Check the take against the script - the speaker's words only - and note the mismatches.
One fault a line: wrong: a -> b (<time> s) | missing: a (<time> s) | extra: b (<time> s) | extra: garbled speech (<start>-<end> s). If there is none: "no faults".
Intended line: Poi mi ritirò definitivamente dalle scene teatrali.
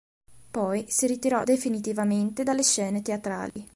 wrong: mi -> si (0.9 s)